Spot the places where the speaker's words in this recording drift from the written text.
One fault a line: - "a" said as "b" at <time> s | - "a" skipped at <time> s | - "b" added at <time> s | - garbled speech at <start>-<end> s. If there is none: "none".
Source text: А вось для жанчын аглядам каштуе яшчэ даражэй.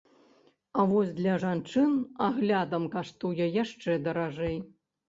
none